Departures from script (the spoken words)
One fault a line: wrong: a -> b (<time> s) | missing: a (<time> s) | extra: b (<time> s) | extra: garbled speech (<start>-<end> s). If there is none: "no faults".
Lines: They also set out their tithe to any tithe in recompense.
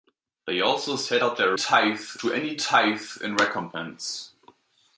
no faults